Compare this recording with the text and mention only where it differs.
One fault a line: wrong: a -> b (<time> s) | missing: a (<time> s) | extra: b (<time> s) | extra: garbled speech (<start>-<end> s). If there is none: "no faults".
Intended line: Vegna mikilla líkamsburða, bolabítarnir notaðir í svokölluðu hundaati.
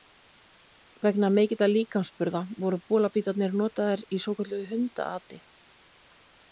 extra: voru (2.6 s)